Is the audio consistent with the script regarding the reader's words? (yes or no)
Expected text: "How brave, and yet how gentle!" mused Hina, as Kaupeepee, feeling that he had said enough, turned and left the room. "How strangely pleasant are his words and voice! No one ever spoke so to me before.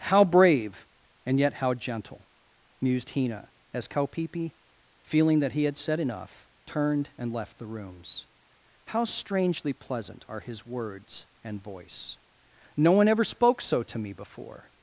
no